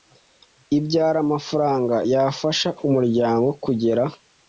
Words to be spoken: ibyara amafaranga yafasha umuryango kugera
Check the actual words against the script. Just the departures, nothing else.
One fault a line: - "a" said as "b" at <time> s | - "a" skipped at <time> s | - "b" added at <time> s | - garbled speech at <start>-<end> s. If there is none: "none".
none